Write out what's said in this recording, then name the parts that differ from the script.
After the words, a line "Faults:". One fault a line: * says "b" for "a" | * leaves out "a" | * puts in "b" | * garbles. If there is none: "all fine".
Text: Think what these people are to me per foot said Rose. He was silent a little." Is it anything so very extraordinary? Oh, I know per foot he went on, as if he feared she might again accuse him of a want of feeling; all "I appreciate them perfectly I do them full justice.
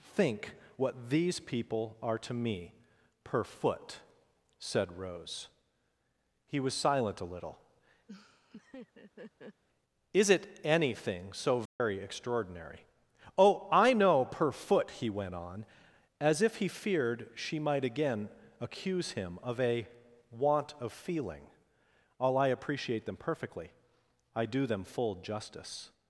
Think what these people are to me per foot said Rose. He was silent a little." Is it anything so very extraordinary? Oh, I know per foot he went on, as if he feared she might again accuse him of a want of feeling; all "I appreciate them perfectly I do them full justice.
Faults:
all fine